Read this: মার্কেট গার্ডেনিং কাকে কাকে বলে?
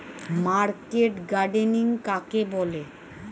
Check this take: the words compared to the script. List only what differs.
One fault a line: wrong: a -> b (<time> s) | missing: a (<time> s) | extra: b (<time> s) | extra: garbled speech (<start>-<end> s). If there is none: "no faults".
missing: কাকে (2.4 s)